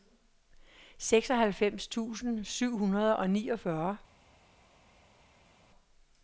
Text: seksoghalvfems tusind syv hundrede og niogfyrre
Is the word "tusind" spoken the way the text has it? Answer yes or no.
yes